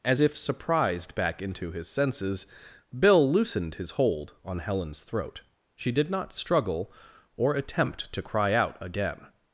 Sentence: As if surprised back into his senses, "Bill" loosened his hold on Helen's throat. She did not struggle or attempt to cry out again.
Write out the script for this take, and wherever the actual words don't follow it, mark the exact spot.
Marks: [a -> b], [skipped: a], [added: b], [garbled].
As if surprised back into his senses, "Bill" loosened his hold on Helen's throat. She did not struggle or attempt to cry out again.